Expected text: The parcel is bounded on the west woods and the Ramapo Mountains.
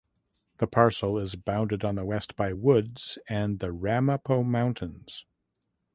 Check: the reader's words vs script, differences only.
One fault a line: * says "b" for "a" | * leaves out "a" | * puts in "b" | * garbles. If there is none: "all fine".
* puts in "by"